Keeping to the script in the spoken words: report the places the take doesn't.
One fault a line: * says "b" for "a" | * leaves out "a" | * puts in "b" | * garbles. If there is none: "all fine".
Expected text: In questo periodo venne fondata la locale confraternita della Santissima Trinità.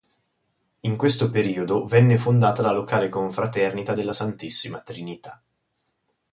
all fine